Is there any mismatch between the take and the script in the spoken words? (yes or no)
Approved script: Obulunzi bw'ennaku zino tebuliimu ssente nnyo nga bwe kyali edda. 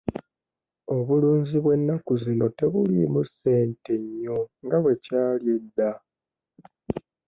no